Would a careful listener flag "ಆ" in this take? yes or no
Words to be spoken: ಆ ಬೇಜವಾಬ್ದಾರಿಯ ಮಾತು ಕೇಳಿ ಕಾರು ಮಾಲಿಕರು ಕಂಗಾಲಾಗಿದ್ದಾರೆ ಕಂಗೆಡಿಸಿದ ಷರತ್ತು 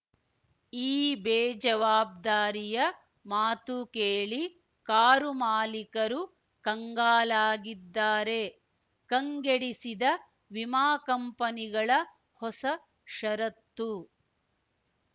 yes